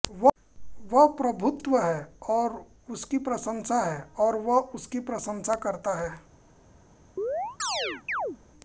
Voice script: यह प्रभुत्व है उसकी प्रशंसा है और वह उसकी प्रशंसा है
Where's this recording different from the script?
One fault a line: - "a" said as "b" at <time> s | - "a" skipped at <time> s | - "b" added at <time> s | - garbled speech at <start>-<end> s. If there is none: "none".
- "यह" said as "वह" at 0.9 s
- "और" added at 2.3 s
- "करता" added at 5.5 s